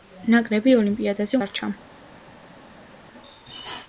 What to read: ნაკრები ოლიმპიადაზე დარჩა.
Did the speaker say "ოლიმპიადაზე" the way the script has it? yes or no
yes